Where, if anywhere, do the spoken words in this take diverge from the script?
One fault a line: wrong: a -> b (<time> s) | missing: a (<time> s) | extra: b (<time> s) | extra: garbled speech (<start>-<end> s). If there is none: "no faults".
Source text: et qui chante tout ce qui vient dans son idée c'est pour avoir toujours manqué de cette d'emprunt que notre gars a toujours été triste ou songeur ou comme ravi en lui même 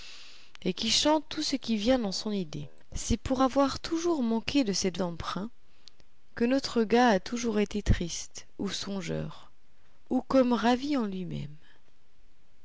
no faults